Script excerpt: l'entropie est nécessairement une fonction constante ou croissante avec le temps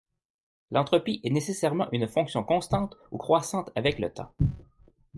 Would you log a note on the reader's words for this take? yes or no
no